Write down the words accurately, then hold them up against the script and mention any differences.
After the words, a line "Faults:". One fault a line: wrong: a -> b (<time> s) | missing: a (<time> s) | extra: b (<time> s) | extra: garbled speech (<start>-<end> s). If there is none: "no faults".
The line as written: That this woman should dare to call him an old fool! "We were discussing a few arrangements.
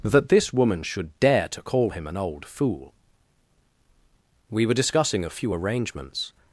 That this woman should dare to call him an old fool! "We were discussing a few arrangements.
Faults:
no faults